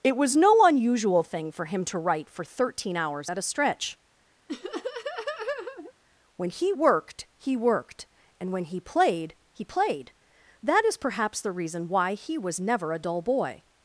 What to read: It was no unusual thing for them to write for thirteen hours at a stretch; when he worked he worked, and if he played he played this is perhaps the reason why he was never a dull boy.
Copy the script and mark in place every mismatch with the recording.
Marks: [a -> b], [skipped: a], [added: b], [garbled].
It was no unusual thing for [them -> him] to write for thirteen hours at a stretch; when he worked he worked, and [if -> when] he played he played [this -> that] is perhaps the reason why he was never a dull boy.